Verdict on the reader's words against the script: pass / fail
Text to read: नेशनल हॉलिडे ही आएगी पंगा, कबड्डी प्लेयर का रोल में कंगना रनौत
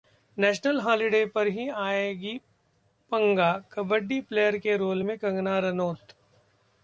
fail